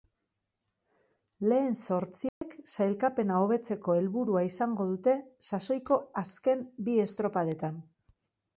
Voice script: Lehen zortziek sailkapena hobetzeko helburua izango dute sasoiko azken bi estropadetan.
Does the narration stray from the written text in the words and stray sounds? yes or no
yes